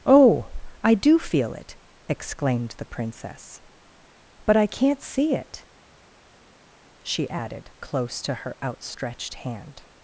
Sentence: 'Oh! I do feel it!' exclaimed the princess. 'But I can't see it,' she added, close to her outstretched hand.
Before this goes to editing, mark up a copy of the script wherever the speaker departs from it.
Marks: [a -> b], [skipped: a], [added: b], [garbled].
'Oh! I do feel it!' exclaimed the princess. 'But I can't see it,' she added, close to her outstretched hand.